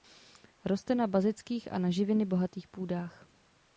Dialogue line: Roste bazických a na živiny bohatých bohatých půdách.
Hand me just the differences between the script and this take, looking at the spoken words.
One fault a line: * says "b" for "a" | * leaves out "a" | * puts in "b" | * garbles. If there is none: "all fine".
* puts in "na"
* leaves out "bohatých"